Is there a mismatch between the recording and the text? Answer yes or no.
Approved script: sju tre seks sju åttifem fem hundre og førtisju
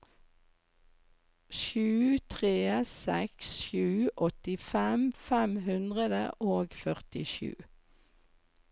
no